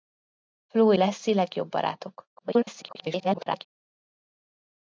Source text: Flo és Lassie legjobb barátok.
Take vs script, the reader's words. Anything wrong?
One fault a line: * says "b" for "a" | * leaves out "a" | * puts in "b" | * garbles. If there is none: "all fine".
* leaves out "és"
* garbles